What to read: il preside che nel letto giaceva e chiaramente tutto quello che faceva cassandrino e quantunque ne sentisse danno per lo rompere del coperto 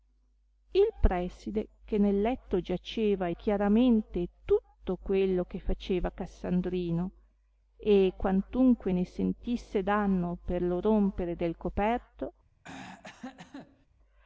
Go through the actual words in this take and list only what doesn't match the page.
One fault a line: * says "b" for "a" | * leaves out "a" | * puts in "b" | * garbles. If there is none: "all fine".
all fine